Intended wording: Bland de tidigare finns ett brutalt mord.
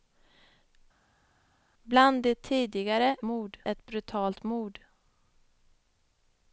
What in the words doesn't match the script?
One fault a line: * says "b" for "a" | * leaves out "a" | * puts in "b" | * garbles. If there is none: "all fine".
* says "mord" for "finns"